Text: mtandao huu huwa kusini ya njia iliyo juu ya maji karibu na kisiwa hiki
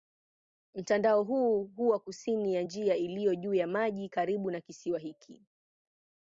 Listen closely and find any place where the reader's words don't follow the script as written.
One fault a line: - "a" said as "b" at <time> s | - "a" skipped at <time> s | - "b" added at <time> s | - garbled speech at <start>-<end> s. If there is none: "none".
none